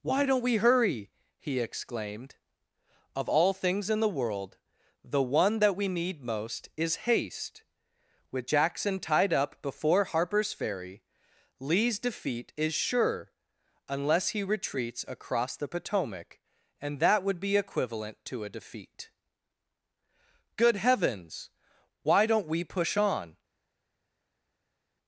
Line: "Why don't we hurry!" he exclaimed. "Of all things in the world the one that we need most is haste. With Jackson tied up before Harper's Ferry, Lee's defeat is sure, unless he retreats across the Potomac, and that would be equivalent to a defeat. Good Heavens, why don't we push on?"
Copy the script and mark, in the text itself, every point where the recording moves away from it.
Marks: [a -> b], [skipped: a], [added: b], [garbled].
"Why don't we hurry!" he exclaimed. "Of all things in the world the one that we need most is haste. With Jackson tied up before Harper's Ferry, Lee's defeat is sure, unless he retreats across the Potomac, and that would be equivalent to a defeat. Good Heavens, why don't we push on?"